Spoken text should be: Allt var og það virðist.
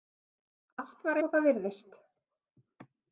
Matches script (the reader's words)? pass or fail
pass